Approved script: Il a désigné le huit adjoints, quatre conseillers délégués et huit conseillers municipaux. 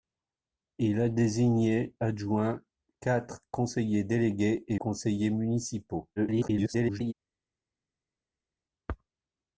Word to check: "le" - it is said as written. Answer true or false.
false